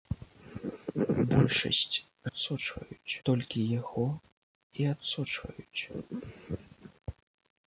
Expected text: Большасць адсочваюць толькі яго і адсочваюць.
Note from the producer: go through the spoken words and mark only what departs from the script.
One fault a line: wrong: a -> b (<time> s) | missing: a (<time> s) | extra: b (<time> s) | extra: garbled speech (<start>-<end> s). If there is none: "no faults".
no faults